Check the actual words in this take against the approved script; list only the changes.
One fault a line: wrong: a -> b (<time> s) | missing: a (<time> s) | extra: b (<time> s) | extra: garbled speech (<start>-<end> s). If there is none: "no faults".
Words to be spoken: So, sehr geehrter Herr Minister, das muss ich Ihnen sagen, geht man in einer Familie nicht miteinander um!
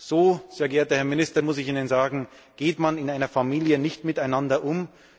missing: das (1.4 s)